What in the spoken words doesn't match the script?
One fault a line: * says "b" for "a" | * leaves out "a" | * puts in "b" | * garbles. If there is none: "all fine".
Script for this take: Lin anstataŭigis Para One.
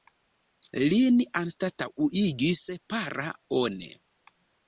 all fine